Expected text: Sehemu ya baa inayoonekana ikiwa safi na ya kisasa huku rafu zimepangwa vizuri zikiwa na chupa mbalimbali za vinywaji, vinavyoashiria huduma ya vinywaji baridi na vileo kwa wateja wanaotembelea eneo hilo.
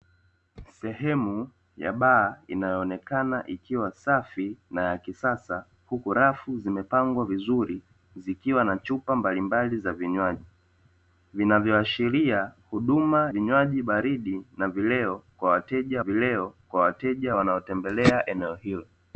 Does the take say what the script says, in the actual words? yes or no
no